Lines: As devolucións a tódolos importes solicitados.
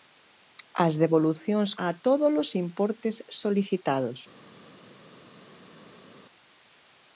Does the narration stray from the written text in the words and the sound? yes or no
no